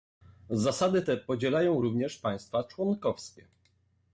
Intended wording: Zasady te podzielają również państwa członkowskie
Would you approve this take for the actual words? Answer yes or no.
yes